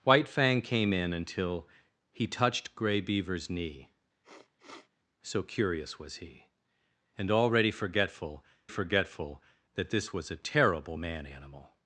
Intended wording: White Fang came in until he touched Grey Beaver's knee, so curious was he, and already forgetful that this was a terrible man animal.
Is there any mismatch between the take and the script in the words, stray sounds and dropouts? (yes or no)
yes